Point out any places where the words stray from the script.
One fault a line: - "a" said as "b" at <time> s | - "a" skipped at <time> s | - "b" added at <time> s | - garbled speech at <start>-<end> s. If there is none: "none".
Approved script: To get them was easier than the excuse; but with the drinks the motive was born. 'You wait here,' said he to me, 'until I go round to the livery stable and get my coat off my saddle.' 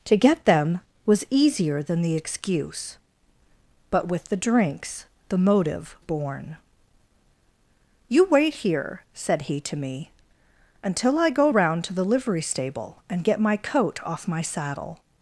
- "was" skipped at 6.0 s